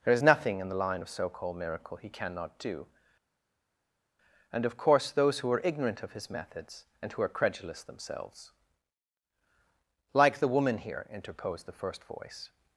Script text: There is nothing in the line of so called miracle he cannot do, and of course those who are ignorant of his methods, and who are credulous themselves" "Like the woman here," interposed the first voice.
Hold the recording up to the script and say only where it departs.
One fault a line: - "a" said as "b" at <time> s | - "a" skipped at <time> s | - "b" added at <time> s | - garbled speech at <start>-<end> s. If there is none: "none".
none